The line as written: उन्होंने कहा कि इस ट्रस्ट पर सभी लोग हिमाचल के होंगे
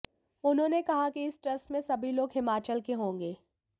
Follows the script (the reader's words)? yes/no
no